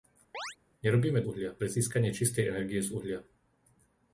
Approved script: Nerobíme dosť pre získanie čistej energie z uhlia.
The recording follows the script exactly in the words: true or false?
false